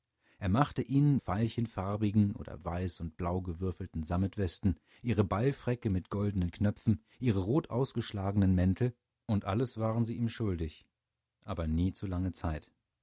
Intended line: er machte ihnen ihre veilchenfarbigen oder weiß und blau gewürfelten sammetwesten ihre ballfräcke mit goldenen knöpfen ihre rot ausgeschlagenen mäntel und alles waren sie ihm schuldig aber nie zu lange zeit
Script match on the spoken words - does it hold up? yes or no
no